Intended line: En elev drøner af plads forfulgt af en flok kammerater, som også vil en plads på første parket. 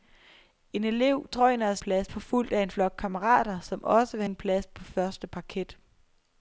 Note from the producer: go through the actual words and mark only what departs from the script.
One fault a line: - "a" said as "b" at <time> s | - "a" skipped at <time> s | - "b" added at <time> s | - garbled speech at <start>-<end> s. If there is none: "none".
none